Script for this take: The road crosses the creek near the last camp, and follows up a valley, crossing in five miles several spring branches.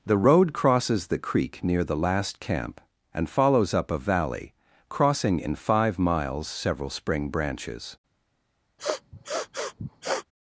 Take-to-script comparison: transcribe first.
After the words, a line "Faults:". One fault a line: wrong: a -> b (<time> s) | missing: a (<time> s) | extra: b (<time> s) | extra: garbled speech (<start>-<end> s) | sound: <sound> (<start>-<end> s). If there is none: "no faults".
The road crosses the creek near the last camp, and follows up a valley, crossing in five miles several spring branches.
Faults:
sound: sniff (8.8-10.3 s)